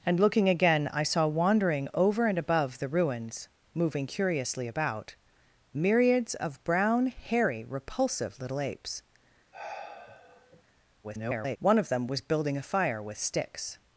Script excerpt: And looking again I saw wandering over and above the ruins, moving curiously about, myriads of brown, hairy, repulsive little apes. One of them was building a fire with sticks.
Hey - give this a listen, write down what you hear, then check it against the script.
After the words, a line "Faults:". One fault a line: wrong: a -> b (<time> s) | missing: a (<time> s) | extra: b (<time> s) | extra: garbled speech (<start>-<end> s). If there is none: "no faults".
And looking again I saw wandering over and above the ruins, moving curiously about, myriads of brown, hairy, repulsive little apes. [garbled] One of them was building a fire with sticks.
Faults:
extra: garbled speech (11.0-11.6 s)